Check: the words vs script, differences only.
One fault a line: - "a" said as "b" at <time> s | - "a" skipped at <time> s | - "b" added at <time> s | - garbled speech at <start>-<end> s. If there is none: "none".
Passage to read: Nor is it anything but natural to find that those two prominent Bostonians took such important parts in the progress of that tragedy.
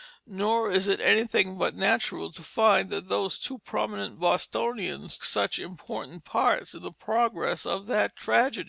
- "took" skipped at 5.2 s